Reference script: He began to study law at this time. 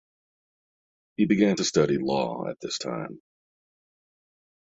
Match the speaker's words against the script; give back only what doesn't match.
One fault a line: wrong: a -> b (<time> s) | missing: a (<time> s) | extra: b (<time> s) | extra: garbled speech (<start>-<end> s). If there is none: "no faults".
no faults